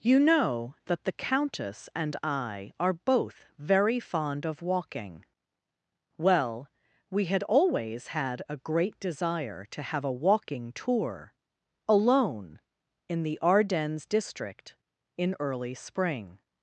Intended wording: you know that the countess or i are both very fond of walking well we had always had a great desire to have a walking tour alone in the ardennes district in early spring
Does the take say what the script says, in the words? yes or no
no